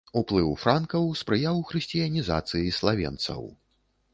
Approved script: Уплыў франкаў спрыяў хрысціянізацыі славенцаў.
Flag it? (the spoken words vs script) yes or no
no